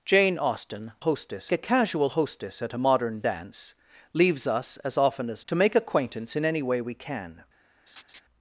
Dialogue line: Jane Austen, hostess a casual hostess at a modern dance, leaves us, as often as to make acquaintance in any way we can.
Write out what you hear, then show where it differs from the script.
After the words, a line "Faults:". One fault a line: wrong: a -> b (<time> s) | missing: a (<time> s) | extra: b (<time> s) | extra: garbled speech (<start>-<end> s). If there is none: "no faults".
Jane Austen, hostess a casual hostess at a modern dance, leaves us, as often as to make acquaintance in any way we can.
Faults:
no faults